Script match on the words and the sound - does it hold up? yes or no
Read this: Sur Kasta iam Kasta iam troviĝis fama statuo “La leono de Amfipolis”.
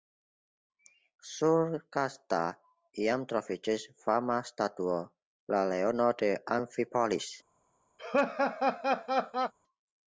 no